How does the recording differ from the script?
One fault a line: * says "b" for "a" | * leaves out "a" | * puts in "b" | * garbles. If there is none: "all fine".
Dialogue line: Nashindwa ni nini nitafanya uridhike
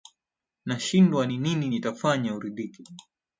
all fine